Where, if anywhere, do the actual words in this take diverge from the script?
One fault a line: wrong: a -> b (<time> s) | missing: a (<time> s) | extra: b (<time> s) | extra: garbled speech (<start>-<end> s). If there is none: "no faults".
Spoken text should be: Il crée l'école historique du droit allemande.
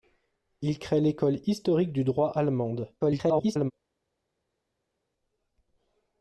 extra: garbled speech (3.0-3.7 s)